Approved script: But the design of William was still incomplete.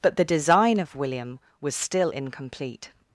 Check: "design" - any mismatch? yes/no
no